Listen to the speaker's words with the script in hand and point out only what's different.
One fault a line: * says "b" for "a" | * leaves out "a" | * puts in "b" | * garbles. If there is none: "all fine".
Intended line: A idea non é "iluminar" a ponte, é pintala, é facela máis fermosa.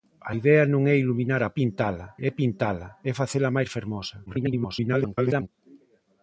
* says "pintala" for "ponte"
* garbles